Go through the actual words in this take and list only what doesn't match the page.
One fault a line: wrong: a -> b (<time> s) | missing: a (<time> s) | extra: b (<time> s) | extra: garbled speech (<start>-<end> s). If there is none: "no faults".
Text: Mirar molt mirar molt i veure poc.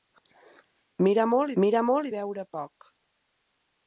no faults